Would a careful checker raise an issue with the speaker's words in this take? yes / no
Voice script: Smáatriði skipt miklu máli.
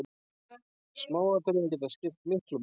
yes